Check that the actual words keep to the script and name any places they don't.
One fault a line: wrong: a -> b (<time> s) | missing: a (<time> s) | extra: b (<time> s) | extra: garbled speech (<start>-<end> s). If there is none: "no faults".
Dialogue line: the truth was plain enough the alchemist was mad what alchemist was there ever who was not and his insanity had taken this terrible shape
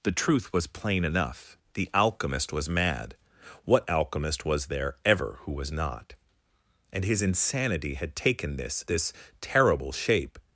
extra: this (8.9 s)